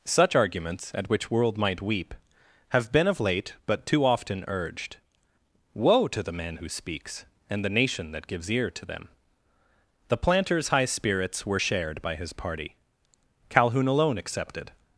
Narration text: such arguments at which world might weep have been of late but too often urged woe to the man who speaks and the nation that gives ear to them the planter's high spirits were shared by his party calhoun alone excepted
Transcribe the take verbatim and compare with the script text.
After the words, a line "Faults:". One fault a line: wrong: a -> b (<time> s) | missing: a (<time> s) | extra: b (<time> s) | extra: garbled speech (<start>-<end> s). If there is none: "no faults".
such arguments at which world might weep have been of late but too often urged woe to the man who speaks and the nation that gives ear to them the planter's high spirits were shared by his party calhoun alone excepted
Faults:
no faults